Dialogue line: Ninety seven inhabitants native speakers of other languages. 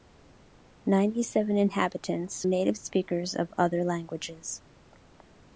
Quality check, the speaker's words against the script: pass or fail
pass